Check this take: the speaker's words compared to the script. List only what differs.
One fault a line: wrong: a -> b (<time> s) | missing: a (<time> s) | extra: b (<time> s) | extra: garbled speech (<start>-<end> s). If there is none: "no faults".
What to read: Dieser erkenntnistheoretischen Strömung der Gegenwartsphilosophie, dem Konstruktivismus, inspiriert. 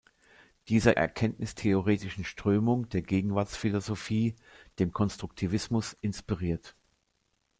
no faults